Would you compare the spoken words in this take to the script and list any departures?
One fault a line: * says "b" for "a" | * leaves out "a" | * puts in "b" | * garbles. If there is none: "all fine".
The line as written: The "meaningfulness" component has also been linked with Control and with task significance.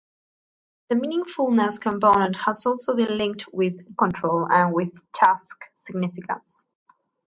all fine